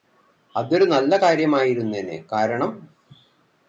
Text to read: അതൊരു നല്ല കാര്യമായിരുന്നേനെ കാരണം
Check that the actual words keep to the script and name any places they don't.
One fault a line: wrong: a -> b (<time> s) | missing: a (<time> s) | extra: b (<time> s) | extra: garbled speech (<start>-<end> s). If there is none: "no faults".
no faults